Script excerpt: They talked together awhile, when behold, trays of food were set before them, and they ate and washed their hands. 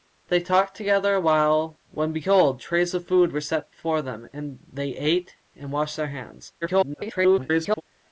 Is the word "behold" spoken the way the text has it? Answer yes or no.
yes